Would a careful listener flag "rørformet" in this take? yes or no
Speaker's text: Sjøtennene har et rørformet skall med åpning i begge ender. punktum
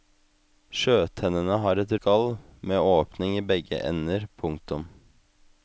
yes